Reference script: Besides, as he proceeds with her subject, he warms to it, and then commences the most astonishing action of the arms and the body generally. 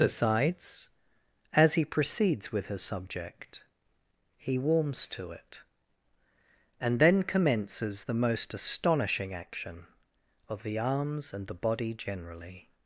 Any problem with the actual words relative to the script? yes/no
no